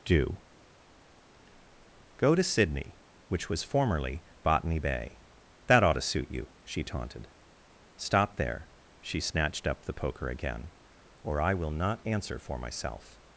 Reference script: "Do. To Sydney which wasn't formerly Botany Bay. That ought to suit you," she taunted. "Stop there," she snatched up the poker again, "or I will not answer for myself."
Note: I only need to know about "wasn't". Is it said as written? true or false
false